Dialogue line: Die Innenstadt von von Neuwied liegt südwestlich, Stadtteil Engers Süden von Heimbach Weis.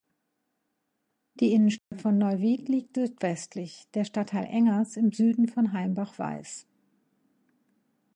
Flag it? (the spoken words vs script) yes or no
yes